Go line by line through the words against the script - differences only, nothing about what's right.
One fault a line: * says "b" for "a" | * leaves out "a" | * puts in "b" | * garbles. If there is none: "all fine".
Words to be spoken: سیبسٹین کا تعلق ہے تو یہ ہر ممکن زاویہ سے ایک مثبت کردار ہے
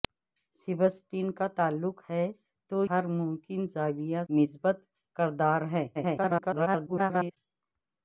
* leaves out "یہ"
* leaves out "سے ایک"
* garbles